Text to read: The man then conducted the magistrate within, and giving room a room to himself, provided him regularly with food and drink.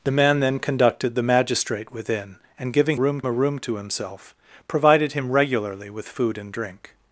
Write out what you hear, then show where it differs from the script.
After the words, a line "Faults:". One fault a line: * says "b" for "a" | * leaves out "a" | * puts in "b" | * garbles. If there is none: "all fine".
The man then conducted the magistrate within, and giving room a room to himself, provided him regularly with food and drink.
Faults:
all fine